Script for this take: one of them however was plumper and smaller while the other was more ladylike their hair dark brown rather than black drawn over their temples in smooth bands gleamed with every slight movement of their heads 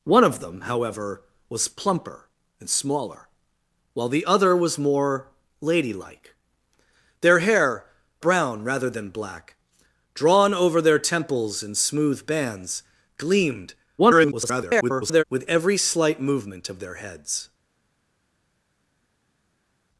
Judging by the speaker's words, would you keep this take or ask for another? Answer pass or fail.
fail